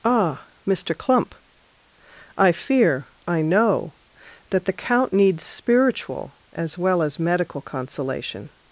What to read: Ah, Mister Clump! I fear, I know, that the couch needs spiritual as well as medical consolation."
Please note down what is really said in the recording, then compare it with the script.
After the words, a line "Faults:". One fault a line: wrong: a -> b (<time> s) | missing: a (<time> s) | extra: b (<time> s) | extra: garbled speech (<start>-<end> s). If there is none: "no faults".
Ah, Mister Clump! I fear, I know, that the count needs spiritual as well as medical consolation."
Faults:
wrong: couch -> count (4.7 s)